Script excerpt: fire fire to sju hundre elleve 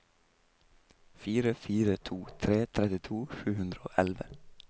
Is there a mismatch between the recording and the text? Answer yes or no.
yes